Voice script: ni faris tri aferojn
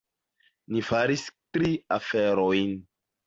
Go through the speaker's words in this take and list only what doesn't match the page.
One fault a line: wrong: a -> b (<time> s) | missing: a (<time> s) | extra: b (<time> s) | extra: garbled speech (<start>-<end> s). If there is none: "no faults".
no faults